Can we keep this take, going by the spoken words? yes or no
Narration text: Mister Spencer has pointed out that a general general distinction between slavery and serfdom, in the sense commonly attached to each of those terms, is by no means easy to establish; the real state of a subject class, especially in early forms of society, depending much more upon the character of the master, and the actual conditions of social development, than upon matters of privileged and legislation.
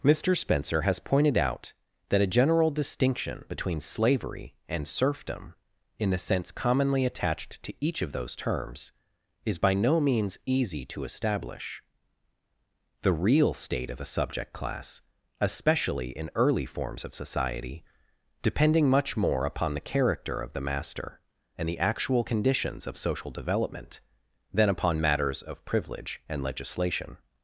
no